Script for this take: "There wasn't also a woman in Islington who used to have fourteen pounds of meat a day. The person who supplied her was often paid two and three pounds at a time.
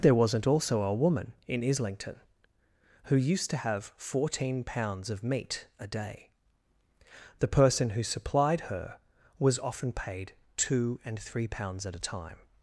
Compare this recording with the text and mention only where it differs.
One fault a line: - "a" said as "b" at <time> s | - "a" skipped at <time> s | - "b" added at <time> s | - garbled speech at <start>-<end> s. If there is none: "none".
none